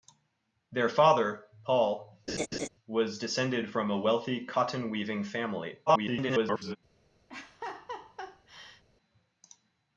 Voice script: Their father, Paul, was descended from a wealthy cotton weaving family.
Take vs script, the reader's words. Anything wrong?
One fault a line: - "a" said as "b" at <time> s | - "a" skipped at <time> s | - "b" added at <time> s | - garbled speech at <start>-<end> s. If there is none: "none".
- garbled speech at 5.9-6.8 s